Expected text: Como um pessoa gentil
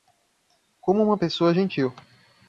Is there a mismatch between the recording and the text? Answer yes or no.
yes